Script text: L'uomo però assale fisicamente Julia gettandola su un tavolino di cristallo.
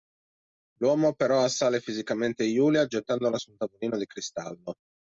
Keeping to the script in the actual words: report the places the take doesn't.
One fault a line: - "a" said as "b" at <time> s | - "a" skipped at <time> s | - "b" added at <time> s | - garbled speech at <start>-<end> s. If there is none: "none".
none